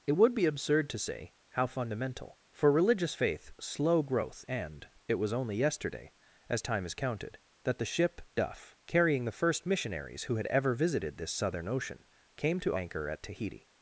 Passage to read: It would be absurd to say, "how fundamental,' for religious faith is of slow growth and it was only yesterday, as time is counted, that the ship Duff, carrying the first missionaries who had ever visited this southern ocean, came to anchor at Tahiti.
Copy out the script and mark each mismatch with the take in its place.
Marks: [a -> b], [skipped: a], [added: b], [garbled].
It would be absurd to say, "how fundamental,' for religious faith [skipped: is of] slow growth and it was only yesterday, as time is counted, that the ship Duff, carrying the first missionaries who had ever visited this southern ocean, came to anchor at Tahiti.